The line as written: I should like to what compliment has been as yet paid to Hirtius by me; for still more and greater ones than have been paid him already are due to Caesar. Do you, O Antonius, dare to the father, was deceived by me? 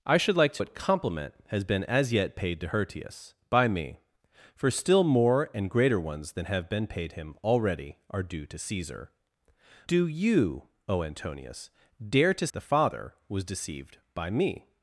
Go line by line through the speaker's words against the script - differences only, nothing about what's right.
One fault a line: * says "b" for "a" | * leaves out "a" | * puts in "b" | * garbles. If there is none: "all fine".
all fine